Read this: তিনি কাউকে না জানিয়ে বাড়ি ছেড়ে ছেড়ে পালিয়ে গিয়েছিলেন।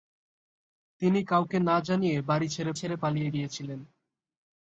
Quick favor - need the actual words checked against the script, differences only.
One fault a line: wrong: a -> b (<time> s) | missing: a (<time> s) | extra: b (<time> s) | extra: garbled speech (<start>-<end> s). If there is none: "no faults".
no faults